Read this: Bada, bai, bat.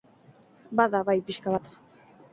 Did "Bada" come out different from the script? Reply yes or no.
no